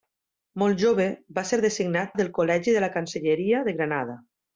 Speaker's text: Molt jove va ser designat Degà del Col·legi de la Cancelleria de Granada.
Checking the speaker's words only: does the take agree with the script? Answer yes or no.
no